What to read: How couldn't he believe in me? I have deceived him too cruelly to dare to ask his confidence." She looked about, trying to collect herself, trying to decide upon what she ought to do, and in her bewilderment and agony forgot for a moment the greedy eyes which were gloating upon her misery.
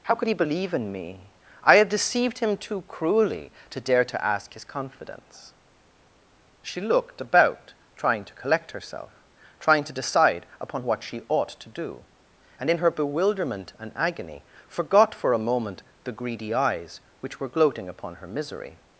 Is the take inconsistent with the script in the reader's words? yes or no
yes